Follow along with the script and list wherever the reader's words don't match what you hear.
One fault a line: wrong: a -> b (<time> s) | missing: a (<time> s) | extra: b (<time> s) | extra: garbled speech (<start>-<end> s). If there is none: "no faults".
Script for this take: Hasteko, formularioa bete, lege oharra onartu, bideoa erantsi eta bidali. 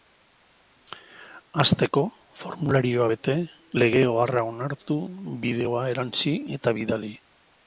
no faults